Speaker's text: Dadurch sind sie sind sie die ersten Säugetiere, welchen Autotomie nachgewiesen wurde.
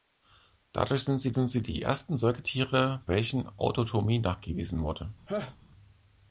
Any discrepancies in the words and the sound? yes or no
yes